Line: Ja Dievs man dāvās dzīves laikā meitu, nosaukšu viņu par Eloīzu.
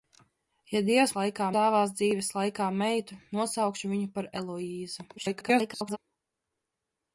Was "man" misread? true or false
true